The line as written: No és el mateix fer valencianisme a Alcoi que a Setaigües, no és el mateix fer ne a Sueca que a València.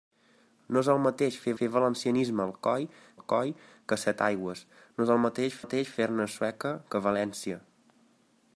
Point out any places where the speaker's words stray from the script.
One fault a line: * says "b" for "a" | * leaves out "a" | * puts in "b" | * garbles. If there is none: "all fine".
* puts in "fer"
* puts in "Alcoi"
* puts in "mateix"